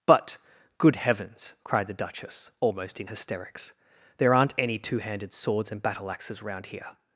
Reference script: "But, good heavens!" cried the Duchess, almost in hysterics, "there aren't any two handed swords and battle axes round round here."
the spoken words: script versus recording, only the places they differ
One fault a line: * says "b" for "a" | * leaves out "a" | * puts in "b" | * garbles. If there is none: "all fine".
* leaves out "round"